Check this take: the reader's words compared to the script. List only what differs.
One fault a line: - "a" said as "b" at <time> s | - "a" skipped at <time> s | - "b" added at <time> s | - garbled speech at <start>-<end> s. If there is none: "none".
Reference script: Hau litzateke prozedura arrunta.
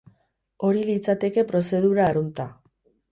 - "Hau" said as "Hori" at 0.7 s